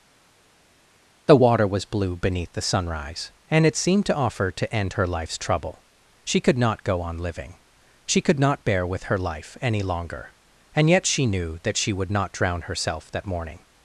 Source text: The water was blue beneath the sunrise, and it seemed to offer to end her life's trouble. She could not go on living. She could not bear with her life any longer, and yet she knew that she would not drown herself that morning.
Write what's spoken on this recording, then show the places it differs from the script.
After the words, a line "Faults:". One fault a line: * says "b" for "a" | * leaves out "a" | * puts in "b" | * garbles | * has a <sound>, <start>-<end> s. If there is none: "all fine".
The water was blue beneath the sunrise, and it seemed to offer to end her life's trouble. She could not go on living. She could not bear with her life any longer, and yet she knew that she would not drown herself that morning.
Faults:
all fine